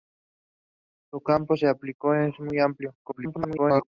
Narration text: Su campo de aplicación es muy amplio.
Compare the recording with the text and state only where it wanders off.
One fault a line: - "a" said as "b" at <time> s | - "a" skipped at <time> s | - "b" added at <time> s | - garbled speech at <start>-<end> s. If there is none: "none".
- garbled speech at 3.0-3.9 s